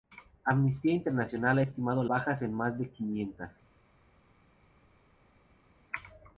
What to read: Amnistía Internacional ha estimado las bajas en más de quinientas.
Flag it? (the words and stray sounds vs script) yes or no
yes